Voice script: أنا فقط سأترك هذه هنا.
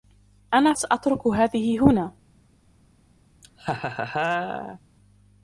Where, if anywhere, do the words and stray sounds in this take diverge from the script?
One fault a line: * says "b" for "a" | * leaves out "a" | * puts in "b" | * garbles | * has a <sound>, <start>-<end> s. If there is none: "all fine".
* leaves out "فقط"
* has a laugh, 3.4-4.8 s